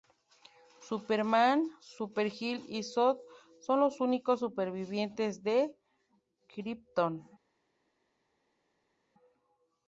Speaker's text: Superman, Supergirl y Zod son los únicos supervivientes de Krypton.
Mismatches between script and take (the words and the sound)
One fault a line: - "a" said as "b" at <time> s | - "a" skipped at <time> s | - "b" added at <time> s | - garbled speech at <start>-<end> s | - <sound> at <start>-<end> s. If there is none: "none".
none